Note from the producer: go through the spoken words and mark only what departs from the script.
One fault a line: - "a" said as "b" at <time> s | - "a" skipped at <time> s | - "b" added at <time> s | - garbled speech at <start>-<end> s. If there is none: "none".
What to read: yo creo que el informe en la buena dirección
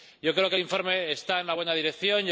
- "está" added at 1.1 s